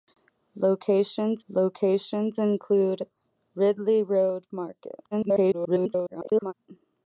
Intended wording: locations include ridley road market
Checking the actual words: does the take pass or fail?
fail